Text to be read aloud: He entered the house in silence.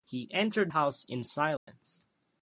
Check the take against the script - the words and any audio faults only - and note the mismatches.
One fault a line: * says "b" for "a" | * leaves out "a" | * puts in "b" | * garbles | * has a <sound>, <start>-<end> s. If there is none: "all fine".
* leaves out "the"
* has a dropout, 1.6-1.7 s